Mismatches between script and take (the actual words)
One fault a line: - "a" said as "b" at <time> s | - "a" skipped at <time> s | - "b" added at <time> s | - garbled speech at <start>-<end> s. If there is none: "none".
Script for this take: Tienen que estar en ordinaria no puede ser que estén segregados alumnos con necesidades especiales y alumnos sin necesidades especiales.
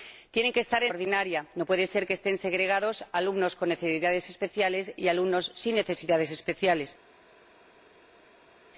none